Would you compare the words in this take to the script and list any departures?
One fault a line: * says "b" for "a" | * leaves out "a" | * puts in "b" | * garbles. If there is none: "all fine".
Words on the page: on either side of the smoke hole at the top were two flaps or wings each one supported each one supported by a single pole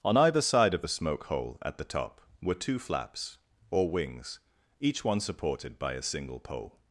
* leaves out "each one supported"